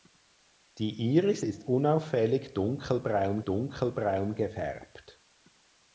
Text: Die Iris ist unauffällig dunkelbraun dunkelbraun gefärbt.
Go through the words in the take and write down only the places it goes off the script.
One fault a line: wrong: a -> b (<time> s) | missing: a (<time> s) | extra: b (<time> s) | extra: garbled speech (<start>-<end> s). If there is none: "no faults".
no faults